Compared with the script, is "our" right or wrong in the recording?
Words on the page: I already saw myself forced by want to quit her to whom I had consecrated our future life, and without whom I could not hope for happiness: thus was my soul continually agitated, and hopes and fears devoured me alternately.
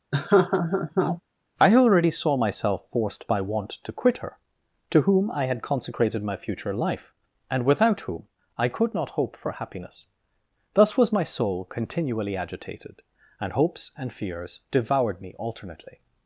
wrong